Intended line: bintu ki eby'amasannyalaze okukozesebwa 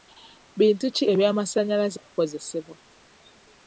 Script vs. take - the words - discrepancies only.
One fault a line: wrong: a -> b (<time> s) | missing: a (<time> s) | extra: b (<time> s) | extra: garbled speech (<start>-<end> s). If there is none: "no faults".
no faults